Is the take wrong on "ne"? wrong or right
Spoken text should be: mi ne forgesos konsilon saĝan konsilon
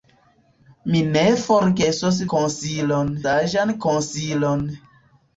right